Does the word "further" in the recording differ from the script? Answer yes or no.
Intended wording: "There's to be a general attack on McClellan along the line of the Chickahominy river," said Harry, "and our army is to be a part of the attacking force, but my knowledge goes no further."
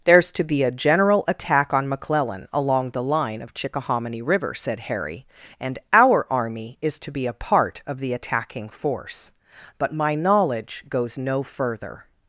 no